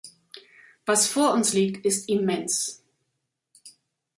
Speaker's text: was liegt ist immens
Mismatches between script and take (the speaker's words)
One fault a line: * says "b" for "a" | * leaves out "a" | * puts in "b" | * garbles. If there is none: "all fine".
* puts in "vor uns"